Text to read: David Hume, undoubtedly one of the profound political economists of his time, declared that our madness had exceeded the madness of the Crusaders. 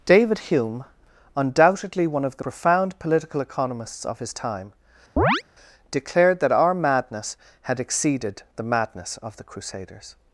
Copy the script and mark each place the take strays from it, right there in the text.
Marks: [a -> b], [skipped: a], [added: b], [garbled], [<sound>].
David Hume, undoubtedly one of the profound political economists of his time, [chirp] declared that our madness had exceeded the madness of the Crusaders.